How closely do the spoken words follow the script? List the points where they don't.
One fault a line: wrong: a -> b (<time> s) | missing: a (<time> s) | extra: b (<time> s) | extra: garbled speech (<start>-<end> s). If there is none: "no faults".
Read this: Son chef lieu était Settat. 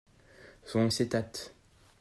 missing: chef lieu était (0.9 s)